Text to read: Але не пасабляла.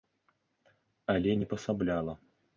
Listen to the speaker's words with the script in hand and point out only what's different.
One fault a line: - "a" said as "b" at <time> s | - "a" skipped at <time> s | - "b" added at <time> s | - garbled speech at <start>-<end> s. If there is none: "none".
none